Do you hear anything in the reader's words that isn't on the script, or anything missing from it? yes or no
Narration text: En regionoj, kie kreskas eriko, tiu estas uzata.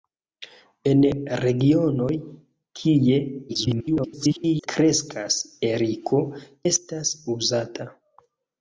yes